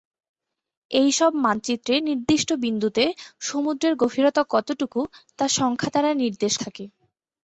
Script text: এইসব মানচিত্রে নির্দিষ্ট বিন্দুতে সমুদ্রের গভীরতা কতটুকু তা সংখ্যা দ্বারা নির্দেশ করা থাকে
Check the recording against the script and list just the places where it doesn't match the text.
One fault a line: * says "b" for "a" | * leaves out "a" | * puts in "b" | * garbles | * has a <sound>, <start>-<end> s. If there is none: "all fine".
* leaves out "করা"